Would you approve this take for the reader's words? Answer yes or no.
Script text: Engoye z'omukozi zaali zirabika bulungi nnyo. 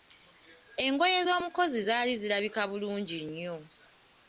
yes